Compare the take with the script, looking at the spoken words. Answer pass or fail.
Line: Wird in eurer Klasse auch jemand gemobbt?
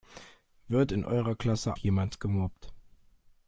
fail